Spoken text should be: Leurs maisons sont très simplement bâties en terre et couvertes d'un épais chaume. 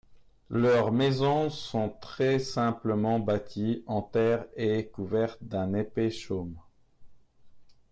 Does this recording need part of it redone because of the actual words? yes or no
no